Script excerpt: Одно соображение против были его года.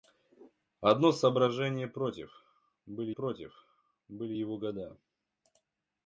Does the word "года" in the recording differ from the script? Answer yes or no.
no